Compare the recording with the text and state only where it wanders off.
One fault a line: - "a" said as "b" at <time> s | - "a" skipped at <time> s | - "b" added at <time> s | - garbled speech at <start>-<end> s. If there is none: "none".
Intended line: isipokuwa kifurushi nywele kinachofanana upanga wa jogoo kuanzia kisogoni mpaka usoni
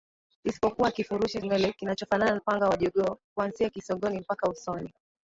none